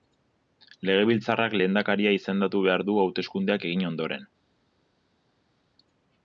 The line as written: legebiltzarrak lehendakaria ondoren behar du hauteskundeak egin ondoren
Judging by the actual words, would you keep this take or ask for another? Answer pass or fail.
fail